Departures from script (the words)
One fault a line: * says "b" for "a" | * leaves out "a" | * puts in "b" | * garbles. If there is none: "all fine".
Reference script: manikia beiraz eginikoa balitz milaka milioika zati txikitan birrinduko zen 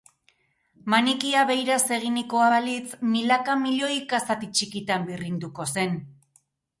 all fine